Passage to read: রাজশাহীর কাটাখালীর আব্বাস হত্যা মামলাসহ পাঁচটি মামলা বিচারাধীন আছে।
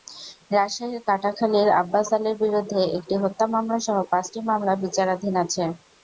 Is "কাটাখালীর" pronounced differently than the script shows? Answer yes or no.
no